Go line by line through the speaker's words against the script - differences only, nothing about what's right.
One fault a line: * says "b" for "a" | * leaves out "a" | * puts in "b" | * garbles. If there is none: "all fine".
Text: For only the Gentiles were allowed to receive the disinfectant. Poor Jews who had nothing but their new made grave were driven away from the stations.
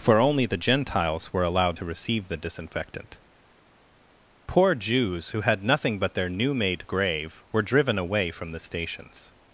all fine